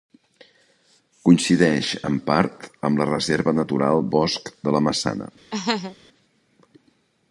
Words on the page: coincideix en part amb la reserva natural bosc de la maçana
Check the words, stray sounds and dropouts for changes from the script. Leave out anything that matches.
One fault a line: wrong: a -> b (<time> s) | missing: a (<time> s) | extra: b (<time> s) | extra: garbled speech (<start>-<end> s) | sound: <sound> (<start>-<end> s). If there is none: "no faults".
sound: laugh (5.5-6.0 s)